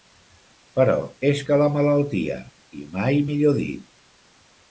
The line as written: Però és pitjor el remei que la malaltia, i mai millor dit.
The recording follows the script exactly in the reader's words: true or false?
false